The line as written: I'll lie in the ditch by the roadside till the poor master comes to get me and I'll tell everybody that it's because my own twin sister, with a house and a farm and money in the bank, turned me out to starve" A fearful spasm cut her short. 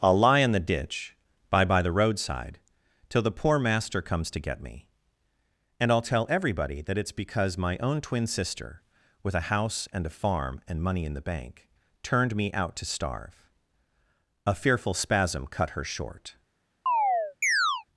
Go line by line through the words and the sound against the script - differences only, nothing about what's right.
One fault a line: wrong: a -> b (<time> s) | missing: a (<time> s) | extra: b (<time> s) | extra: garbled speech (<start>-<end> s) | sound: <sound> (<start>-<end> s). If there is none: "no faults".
extra: by (1.6 s)
sound: chirp (16.9-17.8 s)